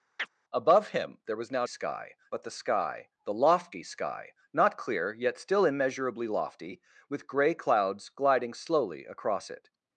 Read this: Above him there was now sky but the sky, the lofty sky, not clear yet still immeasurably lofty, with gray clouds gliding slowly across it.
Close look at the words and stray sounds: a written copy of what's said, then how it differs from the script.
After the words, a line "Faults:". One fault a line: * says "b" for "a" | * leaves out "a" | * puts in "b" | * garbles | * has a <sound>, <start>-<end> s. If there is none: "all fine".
Above him there was now sky but the sky, the lofty sky, not clear yet still immeasurably lofty, with gray clouds gliding slowly across it.
Faults:
* has a chirp, 0.2-0.3 s